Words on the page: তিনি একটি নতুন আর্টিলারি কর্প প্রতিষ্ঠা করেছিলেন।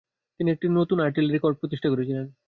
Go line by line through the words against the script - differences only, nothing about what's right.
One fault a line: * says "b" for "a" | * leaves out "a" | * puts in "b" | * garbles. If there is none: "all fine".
all fine